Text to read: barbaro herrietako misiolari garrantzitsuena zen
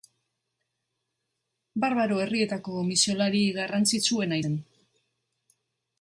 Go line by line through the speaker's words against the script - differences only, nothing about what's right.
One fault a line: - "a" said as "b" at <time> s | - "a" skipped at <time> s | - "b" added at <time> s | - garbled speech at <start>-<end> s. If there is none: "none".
none